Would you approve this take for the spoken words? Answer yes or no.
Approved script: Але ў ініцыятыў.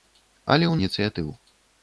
yes